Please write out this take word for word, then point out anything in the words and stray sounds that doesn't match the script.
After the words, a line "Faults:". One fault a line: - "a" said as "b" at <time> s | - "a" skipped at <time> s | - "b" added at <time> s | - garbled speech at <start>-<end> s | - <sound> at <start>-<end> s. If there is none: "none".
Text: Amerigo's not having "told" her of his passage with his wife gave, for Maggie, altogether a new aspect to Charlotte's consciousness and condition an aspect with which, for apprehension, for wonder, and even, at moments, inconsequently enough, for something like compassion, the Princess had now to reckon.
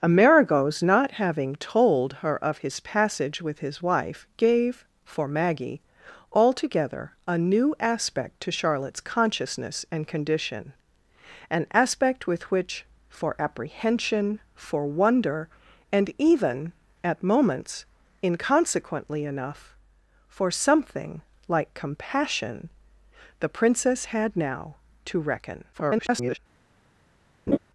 Amerigo's not having "told" her of his passage with his wife gave, for Maggie, altogether a new aspect to Charlotte's consciousness and condition an aspect with which, for apprehension, for wonder, and even, at moments, inconsequently enough, for something like compassion, the Princess had now to reckon. [garbled]
Faults:
- garbled speech at 25.7-26.4 s
- laugh at 27.5-27.6 s